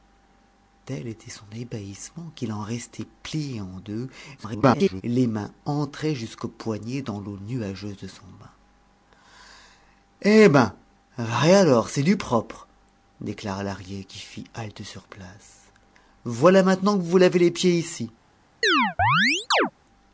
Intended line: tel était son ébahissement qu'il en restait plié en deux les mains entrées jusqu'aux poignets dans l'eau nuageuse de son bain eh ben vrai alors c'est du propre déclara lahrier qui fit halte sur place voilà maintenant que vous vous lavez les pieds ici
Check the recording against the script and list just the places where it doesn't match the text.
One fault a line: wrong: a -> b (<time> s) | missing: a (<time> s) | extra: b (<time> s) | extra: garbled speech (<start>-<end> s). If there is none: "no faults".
extra: garbled speech (4.4-5.0 s)